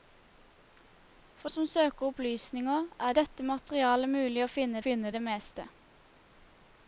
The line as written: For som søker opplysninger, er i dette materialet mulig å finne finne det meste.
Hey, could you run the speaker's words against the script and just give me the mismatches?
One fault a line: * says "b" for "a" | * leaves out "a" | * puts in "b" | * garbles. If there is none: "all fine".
all fine